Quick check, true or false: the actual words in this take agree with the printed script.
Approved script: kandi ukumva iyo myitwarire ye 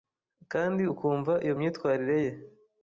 true